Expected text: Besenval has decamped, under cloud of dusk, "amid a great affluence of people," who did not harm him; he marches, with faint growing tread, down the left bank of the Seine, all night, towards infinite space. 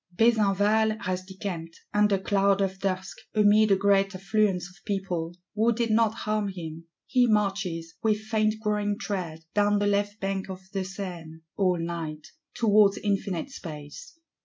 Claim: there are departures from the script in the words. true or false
false